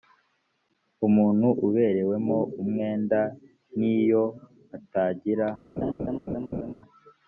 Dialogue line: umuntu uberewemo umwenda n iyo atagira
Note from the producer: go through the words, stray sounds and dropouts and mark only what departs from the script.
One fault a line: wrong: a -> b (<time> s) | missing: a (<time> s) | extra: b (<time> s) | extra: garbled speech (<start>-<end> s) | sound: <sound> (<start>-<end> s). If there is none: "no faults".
sound: laugh (5.8-6.7 s)